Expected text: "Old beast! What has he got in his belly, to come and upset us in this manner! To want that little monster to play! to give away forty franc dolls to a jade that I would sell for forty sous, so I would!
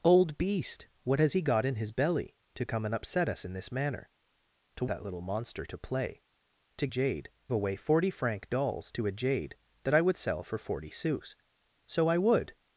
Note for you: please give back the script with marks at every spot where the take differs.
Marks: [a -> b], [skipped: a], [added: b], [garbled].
"Old beast! What has he got in his belly, to come and upset us in this manner! To [skipped: want] that little monster to play! to [give -> jade] away forty franc dolls to a jade that I would sell for forty sous, so I would!